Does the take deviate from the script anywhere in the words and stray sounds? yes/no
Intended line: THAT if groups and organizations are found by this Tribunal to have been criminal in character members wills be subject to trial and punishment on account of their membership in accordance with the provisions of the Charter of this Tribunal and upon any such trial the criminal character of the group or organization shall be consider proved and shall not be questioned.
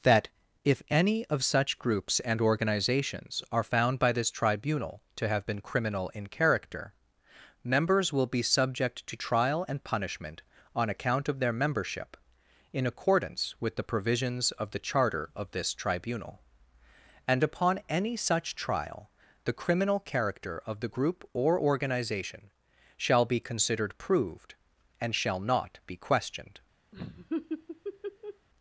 yes